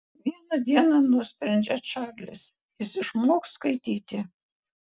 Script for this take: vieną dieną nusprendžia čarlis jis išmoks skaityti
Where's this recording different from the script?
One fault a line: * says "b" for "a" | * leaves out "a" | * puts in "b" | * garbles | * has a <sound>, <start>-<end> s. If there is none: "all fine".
all fine